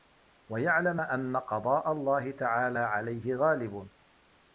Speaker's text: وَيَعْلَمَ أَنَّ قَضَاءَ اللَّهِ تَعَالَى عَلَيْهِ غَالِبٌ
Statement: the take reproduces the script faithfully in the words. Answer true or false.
true